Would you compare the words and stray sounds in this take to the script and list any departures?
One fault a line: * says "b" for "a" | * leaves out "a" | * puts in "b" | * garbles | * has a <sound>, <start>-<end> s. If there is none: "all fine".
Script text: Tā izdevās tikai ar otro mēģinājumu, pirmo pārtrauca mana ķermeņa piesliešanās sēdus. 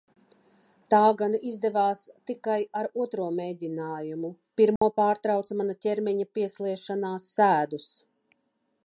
* puts in "gan"
* has a dropout, 4.8-4.8 s